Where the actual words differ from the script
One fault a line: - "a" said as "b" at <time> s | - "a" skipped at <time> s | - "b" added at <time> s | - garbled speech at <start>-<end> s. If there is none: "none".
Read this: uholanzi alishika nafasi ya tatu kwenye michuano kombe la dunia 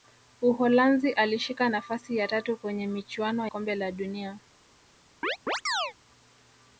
none